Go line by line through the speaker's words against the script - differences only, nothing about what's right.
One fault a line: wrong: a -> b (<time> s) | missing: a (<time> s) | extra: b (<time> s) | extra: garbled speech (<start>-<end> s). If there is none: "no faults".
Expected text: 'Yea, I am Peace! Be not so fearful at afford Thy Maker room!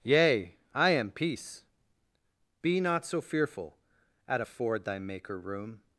no faults